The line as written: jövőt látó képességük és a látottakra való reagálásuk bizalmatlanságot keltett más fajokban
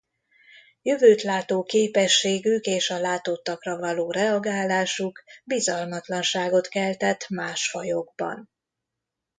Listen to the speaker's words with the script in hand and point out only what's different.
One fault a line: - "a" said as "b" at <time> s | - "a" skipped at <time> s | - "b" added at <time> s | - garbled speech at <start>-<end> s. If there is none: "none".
none